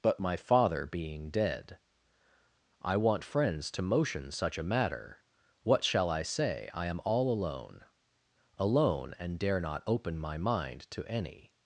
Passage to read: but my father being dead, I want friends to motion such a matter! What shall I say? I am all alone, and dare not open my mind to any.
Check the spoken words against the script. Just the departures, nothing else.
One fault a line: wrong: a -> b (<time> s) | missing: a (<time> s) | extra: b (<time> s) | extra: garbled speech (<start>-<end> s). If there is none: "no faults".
extra: alone (8.6 s)